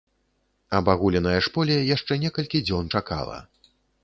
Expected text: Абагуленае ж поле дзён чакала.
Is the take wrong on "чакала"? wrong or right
right